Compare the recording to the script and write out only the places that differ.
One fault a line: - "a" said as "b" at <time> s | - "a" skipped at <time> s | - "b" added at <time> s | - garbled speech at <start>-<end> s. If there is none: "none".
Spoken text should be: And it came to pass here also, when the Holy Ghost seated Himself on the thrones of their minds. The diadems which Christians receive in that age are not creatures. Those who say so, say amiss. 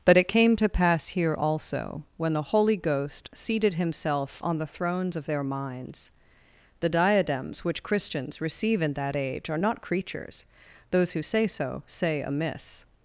- "And" said as "But" at 0.0 s